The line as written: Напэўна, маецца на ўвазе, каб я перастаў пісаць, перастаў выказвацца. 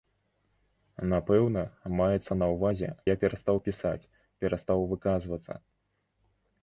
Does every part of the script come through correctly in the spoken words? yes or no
no